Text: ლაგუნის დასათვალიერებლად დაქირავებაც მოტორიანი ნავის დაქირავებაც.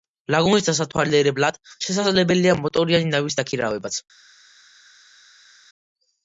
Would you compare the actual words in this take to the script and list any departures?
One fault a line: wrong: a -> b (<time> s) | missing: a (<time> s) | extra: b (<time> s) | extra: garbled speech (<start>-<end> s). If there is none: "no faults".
wrong: დაქირავებაც -> შესაძლებელია (1.9 s)